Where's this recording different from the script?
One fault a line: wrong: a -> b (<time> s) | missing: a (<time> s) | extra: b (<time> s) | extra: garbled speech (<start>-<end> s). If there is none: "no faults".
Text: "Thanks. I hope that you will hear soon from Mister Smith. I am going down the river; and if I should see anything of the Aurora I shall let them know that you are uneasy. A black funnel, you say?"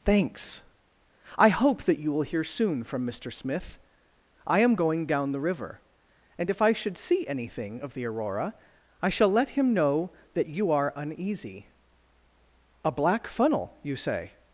wrong: them -> him (9.5 s)